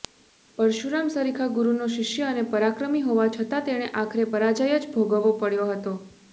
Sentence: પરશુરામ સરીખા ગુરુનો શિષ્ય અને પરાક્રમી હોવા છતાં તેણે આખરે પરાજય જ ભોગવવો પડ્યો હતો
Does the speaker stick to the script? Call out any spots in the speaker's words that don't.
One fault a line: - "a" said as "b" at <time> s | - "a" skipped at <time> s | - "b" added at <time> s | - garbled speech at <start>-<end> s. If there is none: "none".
none